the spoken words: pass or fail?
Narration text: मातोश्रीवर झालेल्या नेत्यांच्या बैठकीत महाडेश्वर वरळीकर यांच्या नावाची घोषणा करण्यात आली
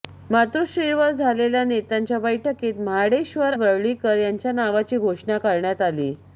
pass